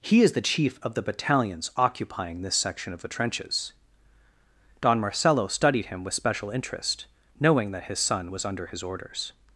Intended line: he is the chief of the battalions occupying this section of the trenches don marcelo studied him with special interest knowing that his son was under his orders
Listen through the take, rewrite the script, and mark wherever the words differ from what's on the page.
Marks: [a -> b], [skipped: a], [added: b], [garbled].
he is the chief of the battalions occupying this section of the trenches don marcelo studied him with special interest knowing that his son was under his orders